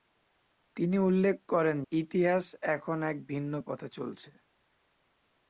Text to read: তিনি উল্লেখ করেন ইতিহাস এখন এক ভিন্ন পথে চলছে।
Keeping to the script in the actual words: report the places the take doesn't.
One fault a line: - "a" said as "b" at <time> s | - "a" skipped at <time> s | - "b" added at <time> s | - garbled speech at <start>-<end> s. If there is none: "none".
none